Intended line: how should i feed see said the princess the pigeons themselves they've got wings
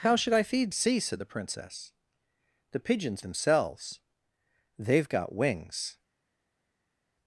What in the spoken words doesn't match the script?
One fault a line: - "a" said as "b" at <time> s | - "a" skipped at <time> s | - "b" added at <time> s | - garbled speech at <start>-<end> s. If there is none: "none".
none